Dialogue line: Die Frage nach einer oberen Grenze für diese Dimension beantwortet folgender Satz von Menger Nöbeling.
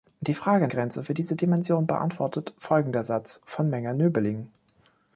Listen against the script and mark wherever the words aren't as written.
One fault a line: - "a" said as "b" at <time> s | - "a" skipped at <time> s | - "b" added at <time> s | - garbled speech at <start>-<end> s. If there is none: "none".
- "nach einer oberen" skipped at 0.7 s